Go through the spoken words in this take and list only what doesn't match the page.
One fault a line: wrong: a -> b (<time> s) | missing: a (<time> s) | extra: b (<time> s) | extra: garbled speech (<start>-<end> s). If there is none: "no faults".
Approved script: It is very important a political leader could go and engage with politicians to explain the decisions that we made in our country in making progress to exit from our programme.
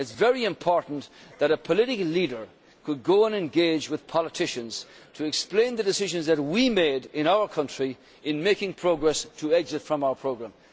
extra: that (1.4 s)